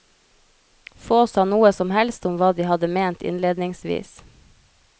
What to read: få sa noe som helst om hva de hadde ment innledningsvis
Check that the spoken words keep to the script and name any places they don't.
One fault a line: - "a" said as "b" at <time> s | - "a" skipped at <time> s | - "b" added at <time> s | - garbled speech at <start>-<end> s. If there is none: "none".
none